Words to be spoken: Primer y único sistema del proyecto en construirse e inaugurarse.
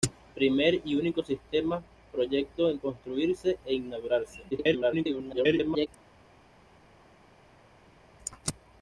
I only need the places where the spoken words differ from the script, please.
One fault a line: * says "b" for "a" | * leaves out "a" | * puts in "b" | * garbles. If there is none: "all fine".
* leaves out "del"
* garbles